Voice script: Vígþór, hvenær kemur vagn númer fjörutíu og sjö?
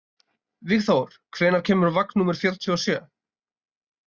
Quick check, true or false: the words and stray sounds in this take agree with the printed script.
true